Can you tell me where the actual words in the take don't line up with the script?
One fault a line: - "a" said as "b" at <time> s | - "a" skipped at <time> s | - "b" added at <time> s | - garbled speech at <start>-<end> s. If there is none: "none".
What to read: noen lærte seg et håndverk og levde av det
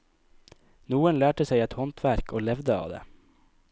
none